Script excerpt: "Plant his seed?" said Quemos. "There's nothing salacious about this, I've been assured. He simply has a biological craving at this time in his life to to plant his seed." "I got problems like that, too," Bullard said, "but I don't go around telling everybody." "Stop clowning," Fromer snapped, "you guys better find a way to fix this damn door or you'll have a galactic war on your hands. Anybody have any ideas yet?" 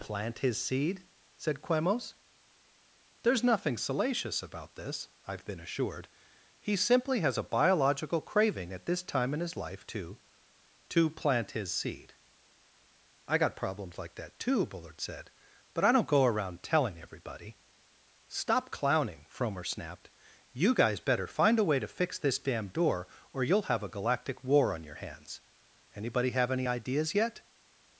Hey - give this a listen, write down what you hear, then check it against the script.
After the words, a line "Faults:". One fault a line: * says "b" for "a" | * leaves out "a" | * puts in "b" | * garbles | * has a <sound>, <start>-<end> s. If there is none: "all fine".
"Plant his seed?" said Quemos. "There's nothing salacious about this, I've been assured. He simply has a biological craving at this time in his life to to plant his seed." "I got problems like that, too," Bullard said, "but I don't go around telling everybody." "Stop clowning," Fromer snapped, "you guys better find a way to fix this damn door or you'll have a galactic war on your hands. Anybody have any ideas yet?"
Faults:
all fine